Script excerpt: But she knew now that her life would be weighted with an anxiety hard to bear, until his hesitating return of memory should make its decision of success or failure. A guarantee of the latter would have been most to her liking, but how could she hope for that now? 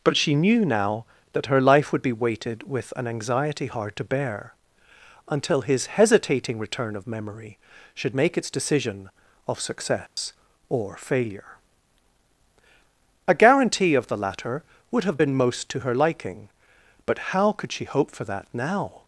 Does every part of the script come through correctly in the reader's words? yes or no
yes